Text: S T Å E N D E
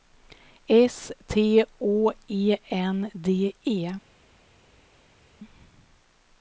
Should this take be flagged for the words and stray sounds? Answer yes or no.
no